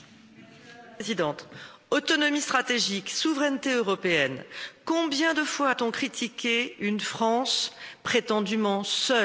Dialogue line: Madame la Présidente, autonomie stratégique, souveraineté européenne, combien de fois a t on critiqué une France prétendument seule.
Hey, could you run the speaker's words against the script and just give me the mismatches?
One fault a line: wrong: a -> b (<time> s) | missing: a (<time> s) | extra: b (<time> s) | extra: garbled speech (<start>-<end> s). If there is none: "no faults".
no faults